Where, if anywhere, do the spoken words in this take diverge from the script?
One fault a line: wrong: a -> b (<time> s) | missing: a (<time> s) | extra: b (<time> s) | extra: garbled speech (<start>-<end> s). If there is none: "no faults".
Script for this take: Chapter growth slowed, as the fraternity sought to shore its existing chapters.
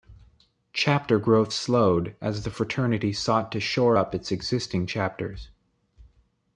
extra: up (3.9 s)